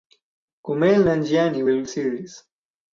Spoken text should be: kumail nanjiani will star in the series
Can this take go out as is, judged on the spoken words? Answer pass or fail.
fail